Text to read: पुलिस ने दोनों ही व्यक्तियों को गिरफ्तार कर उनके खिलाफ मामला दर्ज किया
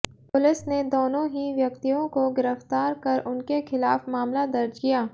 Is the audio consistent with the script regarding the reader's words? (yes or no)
yes